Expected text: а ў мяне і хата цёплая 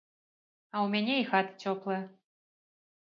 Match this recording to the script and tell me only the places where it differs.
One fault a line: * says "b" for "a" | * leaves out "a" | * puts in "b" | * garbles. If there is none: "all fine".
all fine